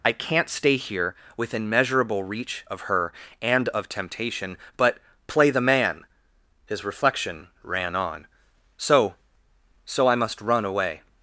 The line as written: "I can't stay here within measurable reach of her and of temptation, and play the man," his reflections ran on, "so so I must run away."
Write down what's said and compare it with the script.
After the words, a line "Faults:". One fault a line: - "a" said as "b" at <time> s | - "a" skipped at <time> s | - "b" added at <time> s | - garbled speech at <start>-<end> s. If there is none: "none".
"I can't stay here within measurable reach of her and of temptation, but play the man," his reflection ran on, "so so I must run away."
Faults:
- "and" said as "but" at 4.8 s
- "reflections" said as "reflection" at 6.8 s